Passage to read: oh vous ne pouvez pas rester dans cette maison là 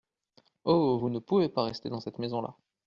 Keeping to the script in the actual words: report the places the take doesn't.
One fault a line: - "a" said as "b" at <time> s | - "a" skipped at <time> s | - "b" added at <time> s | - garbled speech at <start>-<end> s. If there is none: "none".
none